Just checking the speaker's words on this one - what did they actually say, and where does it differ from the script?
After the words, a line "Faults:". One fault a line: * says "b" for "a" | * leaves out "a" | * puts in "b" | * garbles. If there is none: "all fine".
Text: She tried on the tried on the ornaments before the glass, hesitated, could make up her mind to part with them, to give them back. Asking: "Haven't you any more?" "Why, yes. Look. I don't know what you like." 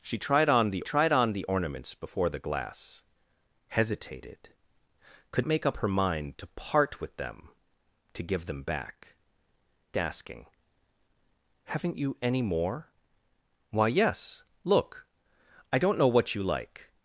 She tried on the tried on the ornaments before the glass, hesitated, could make up her mind to part with them, to give them back. Asking: "Haven't you any more?" "Why, yes. Look. I don't know what you like."
Faults:
all fine